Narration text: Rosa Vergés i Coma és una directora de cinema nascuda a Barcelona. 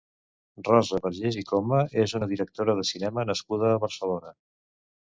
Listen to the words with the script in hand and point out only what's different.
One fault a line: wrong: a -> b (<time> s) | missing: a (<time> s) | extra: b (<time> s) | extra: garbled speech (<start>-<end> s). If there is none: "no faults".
no faults